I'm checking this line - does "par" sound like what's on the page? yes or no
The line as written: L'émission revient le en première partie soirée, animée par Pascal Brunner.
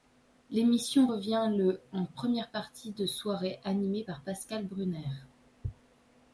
yes